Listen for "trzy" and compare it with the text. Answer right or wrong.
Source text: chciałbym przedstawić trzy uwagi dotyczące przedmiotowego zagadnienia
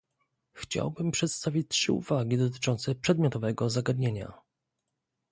right